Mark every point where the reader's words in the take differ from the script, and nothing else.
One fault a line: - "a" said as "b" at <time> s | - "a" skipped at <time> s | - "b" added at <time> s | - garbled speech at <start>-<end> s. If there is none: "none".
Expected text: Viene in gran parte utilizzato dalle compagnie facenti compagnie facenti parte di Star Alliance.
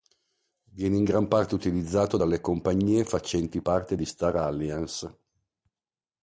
- "compagnie facenti" skipped at 3.6 s